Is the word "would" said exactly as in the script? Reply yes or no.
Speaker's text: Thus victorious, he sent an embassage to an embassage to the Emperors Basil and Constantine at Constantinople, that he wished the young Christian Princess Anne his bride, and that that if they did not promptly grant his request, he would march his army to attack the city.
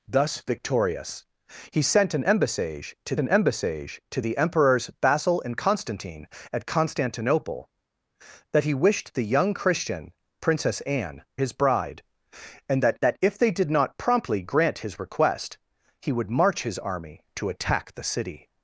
yes